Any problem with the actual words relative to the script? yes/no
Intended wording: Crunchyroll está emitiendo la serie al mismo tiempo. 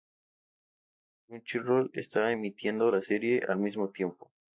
no